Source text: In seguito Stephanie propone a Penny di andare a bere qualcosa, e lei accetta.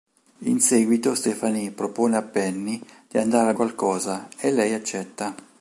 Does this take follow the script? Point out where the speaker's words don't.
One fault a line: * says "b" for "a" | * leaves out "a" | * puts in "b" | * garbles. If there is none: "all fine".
* leaves out "bere"